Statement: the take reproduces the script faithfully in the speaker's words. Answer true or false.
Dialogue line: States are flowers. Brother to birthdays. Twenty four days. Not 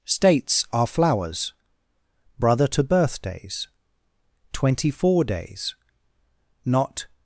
true